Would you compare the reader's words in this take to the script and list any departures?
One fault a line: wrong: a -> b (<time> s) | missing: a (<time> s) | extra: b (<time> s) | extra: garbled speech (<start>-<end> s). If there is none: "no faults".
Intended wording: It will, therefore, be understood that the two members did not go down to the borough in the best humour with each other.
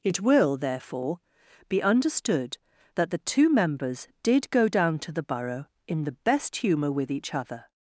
missing: not (4.5 s)